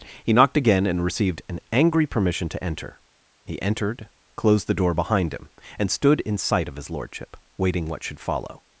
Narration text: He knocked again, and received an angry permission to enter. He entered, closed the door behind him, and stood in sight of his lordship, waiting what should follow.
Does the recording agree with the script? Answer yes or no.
yes